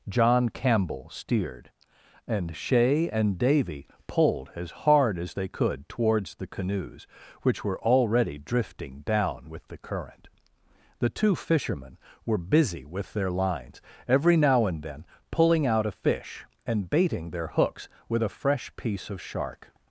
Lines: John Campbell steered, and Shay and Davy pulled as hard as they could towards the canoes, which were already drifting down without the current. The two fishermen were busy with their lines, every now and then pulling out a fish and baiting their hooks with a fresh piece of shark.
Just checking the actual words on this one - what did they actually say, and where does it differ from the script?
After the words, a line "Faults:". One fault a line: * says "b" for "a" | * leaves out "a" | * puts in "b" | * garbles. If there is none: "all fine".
John Campbell steered, and Shay and Davy pulled as hard as they could towards the canoes, which were already drifting down with the current. The two fishermen were busy with their lines, every now and then pulling out a fish and baiting their hooks with a fresh piece of shark.
Faults:
* says "with" for "without"